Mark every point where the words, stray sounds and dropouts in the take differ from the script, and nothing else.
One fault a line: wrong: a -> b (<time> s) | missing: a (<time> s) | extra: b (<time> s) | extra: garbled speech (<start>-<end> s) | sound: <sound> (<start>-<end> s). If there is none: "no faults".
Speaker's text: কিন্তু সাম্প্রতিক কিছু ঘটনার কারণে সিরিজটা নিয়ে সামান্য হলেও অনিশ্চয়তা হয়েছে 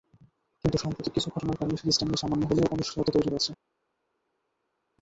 extra: তৈরি (3.1 s)